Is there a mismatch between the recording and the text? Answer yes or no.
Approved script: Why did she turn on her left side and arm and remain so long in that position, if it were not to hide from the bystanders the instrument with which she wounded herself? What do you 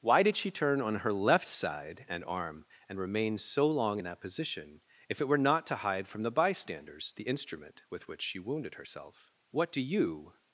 no